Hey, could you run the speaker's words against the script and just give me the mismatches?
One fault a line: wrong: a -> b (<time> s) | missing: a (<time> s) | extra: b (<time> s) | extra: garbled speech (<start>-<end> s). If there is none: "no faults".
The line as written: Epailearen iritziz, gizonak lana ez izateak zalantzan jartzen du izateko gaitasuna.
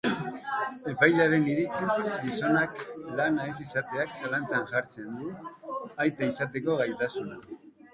extra: aita (6.1 s)